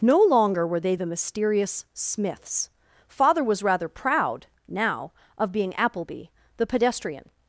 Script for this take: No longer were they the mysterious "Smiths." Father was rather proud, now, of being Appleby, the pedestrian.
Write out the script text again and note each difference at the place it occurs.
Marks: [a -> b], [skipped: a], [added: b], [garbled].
No longer were they the mysterious "Smiths." Father was rather proud, now, of being Appleby, the pedestrian.